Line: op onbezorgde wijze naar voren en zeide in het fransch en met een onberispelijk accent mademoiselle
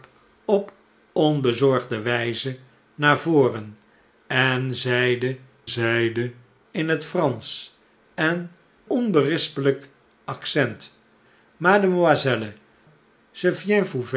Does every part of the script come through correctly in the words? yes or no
no